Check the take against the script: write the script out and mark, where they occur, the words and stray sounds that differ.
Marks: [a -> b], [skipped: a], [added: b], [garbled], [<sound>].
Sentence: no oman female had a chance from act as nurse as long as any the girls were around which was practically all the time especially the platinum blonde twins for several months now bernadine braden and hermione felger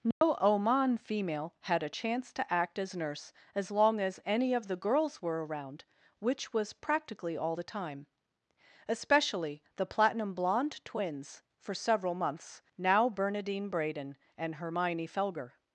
no [dropout] oman female had a chance [from -> to] act as nurse as long as any [added: of] the girls were around which was practically all the time especially the platinum blonde twins for several months now bernadine braden and hermione felger